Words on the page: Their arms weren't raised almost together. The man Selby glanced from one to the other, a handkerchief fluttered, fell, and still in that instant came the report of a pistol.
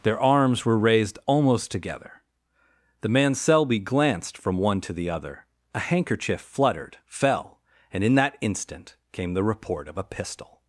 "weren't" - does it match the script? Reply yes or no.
no